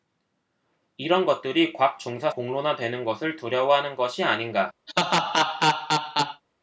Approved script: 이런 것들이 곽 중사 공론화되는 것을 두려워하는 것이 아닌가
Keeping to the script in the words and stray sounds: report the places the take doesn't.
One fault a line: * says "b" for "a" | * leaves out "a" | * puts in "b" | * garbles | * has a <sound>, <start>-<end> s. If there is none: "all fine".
* has a laugh, 4.9-6.4 s